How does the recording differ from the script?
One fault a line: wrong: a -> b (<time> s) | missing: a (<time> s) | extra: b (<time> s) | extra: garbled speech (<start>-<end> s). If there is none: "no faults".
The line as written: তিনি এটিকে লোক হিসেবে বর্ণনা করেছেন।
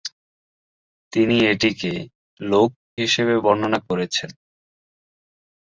no faults